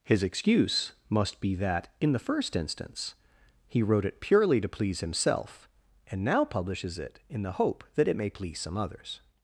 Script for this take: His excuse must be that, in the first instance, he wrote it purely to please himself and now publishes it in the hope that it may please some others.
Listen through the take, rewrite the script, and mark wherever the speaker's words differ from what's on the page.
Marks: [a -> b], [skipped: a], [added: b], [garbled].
His excuse must be that, in the first instance, he wrote it purely to please himself and now publishes it in the hope that it may please some others.